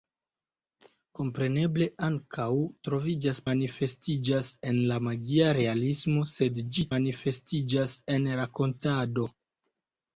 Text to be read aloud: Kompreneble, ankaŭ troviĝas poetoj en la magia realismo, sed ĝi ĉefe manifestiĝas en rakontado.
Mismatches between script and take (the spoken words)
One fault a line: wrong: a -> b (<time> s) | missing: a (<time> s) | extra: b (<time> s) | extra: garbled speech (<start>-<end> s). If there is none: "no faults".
wrong: poetoj -> manifestiĝas (3.5 s)
missing: ĉefe (6.9 s)